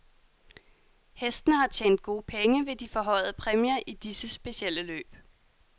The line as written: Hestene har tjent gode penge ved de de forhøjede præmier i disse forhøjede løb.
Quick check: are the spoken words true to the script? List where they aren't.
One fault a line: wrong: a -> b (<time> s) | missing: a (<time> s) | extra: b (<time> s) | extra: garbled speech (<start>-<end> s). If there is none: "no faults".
missing: de (2.9 s)
wrong: forhøjede -> specielle (4.3 s)